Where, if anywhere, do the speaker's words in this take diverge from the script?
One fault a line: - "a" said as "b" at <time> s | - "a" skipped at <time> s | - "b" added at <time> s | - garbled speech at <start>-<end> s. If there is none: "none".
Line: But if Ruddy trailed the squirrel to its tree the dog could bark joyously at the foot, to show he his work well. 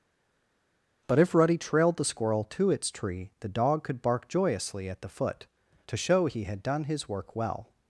- "had done" added at 6.4 s